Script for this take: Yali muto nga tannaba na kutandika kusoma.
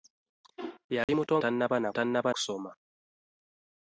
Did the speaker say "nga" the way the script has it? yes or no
no